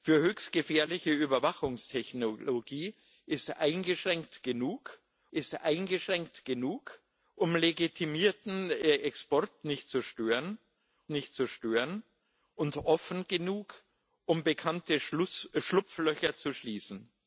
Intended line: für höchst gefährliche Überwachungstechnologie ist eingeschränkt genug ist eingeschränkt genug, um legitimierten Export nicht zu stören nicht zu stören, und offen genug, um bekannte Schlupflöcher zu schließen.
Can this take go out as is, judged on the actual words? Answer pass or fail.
pass